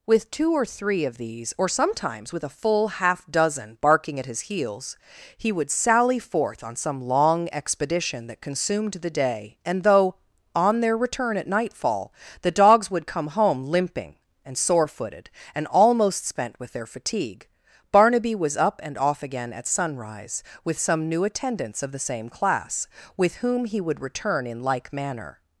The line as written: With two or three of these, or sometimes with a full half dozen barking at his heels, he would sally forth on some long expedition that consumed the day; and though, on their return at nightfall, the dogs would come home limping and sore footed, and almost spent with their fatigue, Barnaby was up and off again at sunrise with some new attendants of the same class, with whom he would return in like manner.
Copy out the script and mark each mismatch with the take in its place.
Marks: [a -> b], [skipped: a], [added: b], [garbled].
With two or three of these, or sometimes with a full half dozen barking at his heels, he would sally forth on some long expedition that consumed the day; and though, on their return at nightfall, the dogs would come home limping and sore footed, and almost spent with their fatigue, Barnaby was up and off again at sunrise with some new attendants of the same class, with whom he would return in like manner.